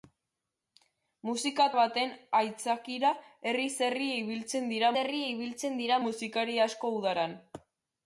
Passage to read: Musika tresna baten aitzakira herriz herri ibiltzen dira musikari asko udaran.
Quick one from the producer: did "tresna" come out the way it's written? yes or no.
no